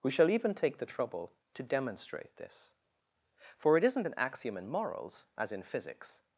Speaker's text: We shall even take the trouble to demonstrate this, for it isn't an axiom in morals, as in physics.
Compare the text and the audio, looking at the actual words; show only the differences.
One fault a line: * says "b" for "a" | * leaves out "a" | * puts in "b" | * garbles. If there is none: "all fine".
all fine